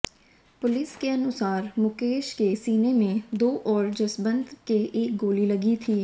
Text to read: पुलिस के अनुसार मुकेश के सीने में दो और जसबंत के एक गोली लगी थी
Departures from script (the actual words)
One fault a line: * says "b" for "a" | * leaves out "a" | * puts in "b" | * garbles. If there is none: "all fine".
all fine